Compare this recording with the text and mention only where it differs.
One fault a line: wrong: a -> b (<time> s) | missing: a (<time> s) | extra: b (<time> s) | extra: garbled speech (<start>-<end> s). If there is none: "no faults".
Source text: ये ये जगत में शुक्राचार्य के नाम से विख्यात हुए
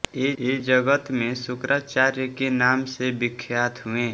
no faults